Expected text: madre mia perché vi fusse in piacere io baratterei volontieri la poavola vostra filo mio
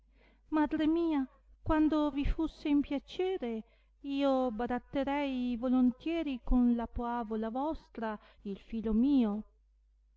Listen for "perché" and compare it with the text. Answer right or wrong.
wrong